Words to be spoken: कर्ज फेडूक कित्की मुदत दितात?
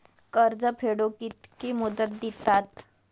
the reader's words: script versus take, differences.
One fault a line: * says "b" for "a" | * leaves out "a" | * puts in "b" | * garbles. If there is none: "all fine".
all fine